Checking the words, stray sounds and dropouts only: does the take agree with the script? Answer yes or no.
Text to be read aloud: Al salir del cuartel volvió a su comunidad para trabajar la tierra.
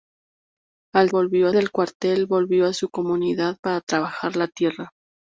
no